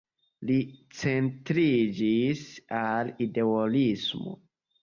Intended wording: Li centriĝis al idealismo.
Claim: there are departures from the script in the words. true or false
false